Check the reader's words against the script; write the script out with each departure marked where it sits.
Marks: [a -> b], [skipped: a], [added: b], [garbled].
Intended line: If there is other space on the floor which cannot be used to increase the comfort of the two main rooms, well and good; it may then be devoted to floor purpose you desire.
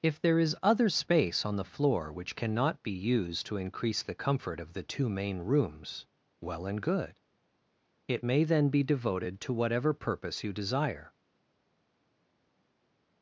If there is other space on the floor which cannot be used to increase the comfort of the two main rooms, well and good; it may then be devoted to [floor -> whatever] purpose you desire.